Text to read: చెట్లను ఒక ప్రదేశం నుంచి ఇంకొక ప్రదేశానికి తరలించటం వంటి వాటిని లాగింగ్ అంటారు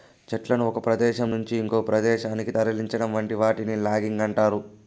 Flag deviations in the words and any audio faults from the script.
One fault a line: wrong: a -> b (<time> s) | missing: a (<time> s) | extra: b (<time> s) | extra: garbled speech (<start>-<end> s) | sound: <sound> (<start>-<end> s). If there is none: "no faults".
no faults